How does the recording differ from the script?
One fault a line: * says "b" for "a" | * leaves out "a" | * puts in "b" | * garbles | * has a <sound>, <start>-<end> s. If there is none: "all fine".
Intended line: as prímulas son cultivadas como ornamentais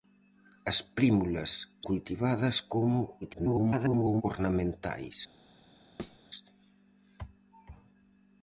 * leaves out "son"
* garbles
* has a thud, 6.0-6.2 s